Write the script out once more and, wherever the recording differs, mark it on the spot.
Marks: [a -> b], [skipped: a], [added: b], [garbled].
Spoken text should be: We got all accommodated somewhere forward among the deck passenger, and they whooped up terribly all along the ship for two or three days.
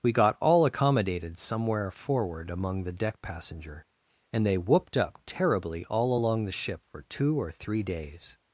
We got all accommodated somewhere forward among the deck passenger, and they whooped up terribly all along the ship for two or three days.